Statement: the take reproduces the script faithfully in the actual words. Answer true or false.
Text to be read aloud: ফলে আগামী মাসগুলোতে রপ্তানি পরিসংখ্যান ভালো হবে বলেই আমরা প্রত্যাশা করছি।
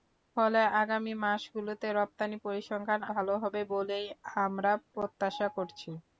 true